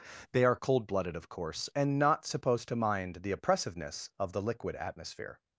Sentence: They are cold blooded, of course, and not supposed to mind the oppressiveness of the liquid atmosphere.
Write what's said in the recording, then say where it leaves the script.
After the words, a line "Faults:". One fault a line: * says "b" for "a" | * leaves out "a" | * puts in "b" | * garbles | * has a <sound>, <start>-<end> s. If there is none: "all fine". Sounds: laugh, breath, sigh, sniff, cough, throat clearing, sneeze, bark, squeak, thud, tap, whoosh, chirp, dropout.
They are cold blooded, of course, and not supposed to mind the oppressiveness of the liquid atmosphere.
Faults:
all fine